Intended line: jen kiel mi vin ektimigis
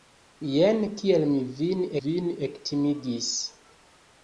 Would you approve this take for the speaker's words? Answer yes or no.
no